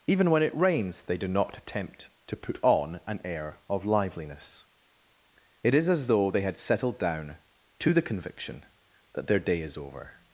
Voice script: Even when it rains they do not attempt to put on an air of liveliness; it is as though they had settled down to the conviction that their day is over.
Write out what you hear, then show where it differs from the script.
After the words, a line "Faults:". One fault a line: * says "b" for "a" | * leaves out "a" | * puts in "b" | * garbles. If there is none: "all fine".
Even when it rains they do not attempt to put on an air of liveliness; it is as though they had settled down to the conviction that their day is over.
Faults:
all fine